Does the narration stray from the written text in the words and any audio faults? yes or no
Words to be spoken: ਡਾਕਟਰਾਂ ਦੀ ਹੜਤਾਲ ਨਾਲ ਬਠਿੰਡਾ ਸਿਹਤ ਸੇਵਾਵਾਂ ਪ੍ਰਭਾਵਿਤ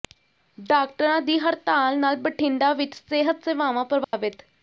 yes